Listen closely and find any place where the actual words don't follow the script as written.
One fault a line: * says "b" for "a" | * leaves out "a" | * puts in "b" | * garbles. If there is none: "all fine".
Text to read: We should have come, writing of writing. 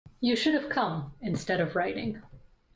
* says "You" for "We"
* says "instead" for "writing"